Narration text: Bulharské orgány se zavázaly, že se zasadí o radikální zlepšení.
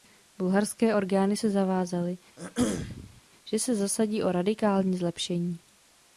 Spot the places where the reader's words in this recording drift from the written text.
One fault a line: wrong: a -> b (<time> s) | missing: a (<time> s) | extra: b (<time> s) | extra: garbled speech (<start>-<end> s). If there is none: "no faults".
no faults